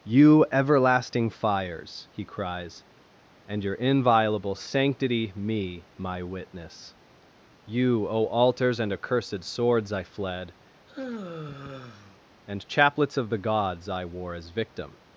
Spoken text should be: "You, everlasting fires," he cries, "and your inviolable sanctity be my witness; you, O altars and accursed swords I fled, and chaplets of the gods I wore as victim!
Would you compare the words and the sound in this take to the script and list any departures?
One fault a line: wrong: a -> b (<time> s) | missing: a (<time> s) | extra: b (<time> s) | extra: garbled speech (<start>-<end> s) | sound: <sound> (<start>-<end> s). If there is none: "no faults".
wrong: be -> me (5.3 s)
sound: sigh (10.9-12.2 s)